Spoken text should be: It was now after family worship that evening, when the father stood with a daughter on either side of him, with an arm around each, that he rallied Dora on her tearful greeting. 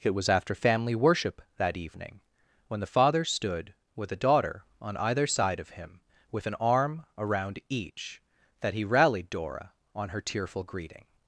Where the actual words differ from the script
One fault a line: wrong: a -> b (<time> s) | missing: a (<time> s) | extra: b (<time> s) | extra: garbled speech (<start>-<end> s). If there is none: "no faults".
missing: now (0.3 s)